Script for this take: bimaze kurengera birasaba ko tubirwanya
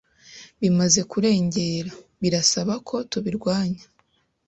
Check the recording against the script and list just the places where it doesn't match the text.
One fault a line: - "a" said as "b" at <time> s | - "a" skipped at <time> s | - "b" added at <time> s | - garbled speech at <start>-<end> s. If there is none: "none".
none